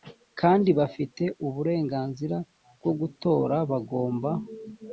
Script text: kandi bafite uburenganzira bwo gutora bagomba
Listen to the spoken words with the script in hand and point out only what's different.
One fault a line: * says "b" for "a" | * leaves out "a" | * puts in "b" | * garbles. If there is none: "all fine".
all fine